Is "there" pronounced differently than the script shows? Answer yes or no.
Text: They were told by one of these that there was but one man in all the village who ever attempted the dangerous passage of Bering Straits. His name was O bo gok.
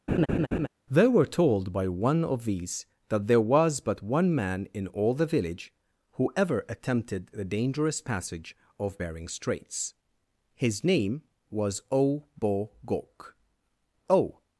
no